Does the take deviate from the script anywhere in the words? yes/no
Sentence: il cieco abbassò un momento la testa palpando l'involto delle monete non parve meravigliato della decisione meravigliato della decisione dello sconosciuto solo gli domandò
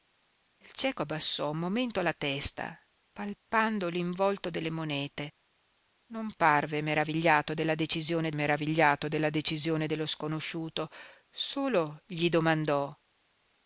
no